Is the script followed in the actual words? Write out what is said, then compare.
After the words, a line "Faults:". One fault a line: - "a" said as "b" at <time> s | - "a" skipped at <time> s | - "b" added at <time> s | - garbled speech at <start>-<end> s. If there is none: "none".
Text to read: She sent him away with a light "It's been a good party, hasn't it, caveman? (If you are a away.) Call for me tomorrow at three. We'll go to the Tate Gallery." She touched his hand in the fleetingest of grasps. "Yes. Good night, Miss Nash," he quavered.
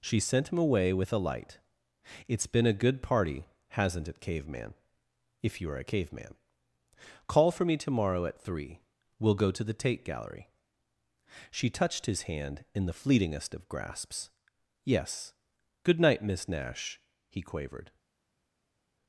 She sent him away with a light "It's been a good party, hasn't it, caveman? (If you are a caveman.) Call for me tomorrow at three. We'll go to the Tate Gallery." She touched his hand in the fleetingest of grasps. "Yes. Good night, Miss Nash," he quavered.
Faults:
- "away" said as "caveman" at 5.9 s